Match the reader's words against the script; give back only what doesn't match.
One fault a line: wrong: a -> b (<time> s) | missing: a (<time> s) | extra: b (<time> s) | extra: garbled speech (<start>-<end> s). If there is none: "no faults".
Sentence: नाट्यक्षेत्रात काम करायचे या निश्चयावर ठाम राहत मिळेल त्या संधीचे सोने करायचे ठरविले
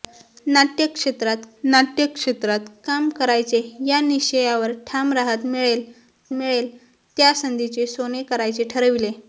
extra: नाट्यक्षेत्रात (1.6 s)
extra: मिळेल (6.3 s)